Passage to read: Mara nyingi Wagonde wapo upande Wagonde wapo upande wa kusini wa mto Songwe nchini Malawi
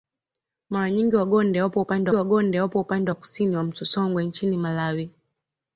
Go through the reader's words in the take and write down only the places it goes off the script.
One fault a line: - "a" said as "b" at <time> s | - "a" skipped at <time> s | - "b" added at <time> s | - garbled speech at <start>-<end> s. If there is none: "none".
none